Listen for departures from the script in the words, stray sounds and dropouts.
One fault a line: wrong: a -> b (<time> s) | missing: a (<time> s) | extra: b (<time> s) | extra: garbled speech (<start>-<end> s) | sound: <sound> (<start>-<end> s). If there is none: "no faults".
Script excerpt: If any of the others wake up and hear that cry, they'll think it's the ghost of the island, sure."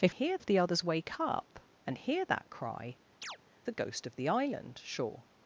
wrong: any -> hear (0.1 s)
missing: they'll think it's (3.0 s)
sound: chirp (3.2-3.4 s)